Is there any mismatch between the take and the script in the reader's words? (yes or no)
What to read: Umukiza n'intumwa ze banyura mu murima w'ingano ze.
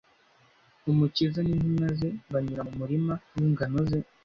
no